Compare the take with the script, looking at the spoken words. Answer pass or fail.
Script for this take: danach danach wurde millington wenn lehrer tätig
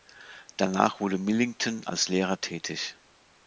fail